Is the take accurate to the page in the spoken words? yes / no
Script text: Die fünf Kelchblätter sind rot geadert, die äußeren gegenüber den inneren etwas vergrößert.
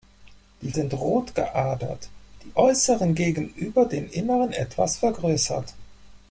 no